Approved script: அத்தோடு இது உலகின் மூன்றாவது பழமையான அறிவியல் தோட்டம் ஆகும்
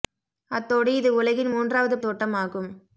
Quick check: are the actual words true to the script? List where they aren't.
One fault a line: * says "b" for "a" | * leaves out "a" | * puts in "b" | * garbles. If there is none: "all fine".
* leaves out "பழமையான அறிவியல்"